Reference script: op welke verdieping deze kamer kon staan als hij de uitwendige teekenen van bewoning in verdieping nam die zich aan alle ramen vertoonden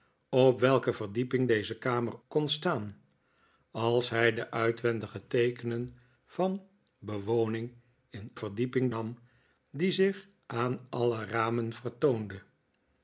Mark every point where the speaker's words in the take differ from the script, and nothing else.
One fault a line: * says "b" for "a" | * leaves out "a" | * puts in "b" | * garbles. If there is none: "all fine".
all fine